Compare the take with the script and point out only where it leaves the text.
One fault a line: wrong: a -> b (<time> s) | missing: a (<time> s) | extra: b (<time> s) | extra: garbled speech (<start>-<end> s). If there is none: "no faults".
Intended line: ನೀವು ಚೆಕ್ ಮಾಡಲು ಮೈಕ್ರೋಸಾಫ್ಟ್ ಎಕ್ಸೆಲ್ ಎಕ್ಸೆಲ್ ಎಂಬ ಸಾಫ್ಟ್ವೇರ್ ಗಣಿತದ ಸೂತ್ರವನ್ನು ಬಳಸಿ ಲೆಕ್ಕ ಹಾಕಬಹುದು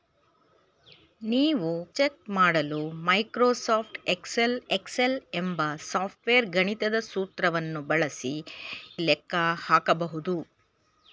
no faults